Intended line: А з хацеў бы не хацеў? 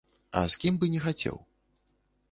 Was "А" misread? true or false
false